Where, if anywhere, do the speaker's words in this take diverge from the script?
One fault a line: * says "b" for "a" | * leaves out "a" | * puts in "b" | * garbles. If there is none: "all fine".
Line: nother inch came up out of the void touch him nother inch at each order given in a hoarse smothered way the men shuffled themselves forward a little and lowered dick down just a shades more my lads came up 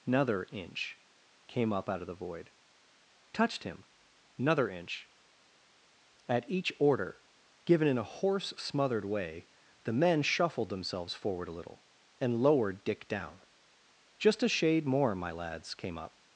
* says "touched" for "touch"
* says "shade" for "shades"